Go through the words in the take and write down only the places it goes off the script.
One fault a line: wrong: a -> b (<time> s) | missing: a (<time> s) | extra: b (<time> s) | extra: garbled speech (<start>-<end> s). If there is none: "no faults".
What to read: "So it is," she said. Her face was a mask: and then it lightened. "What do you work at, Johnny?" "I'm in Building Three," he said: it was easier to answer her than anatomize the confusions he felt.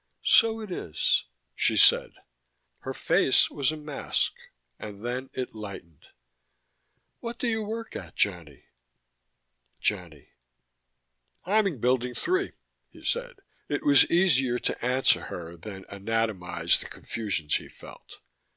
extra: Johnny (9.8 s)